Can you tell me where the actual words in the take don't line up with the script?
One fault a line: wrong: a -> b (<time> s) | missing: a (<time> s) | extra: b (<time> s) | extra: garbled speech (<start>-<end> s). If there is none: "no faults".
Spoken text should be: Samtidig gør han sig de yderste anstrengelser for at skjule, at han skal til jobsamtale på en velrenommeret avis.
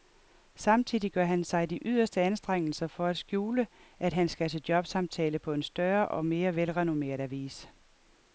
extra: større og mere (5.6 s)